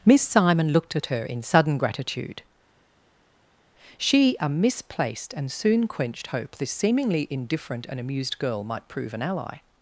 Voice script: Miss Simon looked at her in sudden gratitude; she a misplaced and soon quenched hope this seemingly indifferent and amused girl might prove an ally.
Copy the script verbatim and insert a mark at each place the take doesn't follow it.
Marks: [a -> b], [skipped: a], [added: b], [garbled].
Miss Simon looked at her in sudden gratitude; she a misplaced and soon quenched hope this seemingly indifferent and amused girl might prove an ally.